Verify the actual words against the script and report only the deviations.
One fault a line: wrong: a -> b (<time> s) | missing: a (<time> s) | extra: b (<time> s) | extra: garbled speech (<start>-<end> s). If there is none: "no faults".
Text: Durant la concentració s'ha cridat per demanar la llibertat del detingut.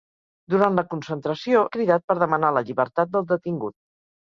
missing: s'ha (1.6 s)